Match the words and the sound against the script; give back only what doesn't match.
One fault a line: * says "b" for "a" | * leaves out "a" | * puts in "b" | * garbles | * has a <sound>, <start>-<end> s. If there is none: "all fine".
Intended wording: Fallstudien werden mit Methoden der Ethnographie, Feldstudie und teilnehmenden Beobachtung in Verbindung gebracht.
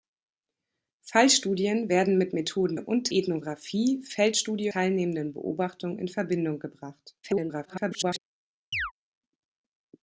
* says "und" for "der"
* leaves out "und"
* garbles
* has a chirp, 8.7-8.9 s